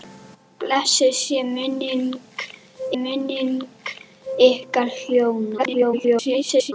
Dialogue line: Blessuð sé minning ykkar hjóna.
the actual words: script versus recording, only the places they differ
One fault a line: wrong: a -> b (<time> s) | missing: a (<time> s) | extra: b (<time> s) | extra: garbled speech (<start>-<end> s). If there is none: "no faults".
extra: minning (3.0 s)
extra: garbled speech (5.6-6.7 s)